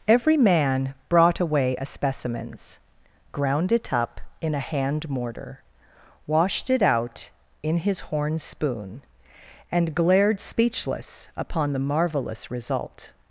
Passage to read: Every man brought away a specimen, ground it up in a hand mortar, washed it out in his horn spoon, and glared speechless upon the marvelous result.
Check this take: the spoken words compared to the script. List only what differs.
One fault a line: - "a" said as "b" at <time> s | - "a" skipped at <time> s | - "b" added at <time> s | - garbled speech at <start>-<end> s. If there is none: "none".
- "specimen" said as "specimens" at 1.9 s